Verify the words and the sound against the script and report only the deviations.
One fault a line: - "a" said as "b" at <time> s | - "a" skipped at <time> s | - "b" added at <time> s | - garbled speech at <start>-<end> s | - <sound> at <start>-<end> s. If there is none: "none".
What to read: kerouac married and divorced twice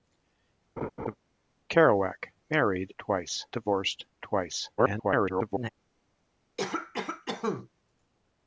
- laugh at 0.8-1.2 s
- "and" said as "twice" at 3.0 s
- garbled speech at 4.8-5.7 s
- cough at 6.6-7.7 s